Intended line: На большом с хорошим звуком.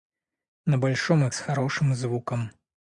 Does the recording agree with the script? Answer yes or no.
yes